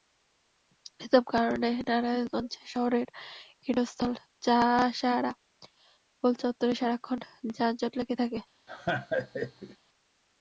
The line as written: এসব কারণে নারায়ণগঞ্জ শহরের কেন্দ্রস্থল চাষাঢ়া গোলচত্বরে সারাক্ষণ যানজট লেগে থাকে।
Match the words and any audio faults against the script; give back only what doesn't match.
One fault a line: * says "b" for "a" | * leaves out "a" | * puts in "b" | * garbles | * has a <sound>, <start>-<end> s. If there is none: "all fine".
* has a laugh, 8.7-9.8 s